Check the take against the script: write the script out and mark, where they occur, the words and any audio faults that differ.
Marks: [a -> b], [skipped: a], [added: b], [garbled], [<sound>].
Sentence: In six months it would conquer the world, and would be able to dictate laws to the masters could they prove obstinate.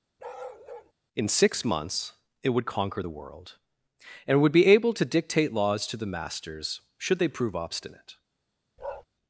[bark] In six months it would conquer the world, and would be able to dictate laws to the masters [could -> should] they prove obstinate. [bark]